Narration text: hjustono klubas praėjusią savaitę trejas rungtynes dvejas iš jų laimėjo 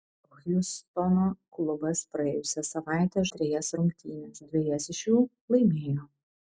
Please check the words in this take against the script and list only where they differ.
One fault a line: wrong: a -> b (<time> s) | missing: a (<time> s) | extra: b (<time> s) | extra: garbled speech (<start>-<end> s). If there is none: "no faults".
no faults